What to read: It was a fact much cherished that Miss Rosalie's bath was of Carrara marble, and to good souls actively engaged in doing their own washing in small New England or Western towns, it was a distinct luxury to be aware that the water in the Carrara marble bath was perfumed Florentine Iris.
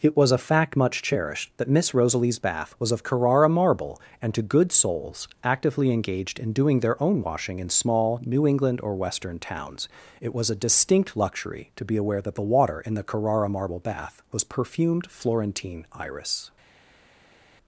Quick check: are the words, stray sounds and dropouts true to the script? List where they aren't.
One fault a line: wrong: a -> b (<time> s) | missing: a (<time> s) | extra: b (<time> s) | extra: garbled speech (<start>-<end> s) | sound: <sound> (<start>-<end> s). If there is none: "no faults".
no faults